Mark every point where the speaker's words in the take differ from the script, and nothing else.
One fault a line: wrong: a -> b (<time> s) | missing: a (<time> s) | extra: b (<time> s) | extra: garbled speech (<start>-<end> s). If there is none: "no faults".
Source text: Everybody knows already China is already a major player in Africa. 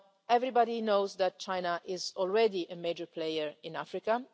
wrong: already -> that (1.2 s)